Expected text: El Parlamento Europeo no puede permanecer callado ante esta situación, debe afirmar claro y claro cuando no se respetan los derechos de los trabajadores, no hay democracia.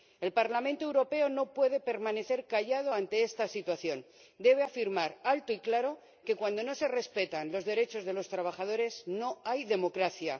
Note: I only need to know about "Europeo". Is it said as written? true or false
true